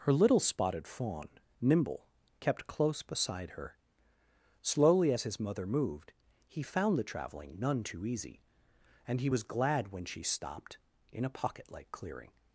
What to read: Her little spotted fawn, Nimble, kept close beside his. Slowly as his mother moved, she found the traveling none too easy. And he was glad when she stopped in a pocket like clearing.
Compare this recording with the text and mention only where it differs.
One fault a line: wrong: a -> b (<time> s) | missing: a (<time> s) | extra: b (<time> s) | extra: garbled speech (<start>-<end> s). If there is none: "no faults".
wrong: his -> her (3.5 s)
wrong: she -> he (6.5 s)